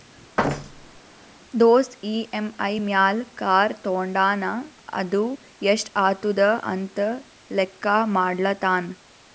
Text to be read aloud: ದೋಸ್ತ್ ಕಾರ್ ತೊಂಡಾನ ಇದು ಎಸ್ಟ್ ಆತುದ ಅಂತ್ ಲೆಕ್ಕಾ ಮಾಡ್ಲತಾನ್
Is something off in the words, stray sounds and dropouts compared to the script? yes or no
yes